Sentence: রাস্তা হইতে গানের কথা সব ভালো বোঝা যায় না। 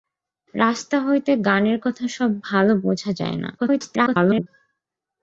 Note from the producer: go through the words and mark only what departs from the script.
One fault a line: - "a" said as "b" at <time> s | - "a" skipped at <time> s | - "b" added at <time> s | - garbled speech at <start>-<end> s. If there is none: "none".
- garbled speech at 3.6-4.5 s